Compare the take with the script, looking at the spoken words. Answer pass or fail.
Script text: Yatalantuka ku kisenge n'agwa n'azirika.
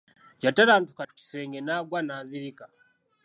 pass